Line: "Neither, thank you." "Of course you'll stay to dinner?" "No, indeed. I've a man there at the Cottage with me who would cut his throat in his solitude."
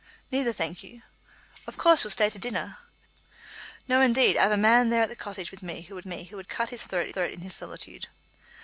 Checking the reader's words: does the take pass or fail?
fail